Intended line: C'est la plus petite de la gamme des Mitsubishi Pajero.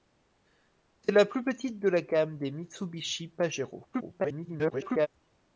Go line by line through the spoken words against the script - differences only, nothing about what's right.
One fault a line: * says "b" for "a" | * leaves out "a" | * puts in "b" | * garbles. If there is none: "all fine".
* garbles